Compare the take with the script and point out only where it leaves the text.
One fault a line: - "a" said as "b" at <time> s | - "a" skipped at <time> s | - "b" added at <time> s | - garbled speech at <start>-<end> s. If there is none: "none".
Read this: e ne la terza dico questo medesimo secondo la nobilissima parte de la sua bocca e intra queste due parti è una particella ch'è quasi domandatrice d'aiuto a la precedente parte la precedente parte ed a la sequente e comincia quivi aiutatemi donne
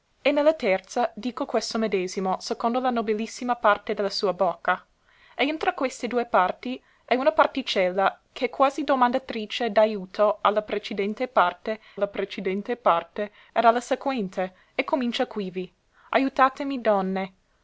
none